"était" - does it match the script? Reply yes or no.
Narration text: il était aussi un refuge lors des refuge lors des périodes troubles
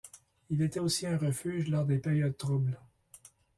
yes